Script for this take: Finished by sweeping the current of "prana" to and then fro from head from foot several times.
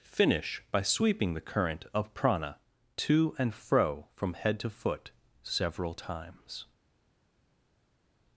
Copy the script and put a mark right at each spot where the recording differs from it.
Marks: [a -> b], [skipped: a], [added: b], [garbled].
[Finished -> Finish] by sweeping the current of "prana" to and [skipped: then] fro from head [from -> to] foot several times.